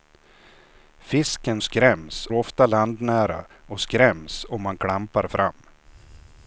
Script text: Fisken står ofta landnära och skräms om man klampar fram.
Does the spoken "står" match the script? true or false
false